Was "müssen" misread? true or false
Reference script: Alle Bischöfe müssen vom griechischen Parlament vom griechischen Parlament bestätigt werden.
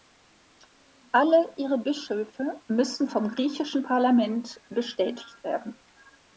false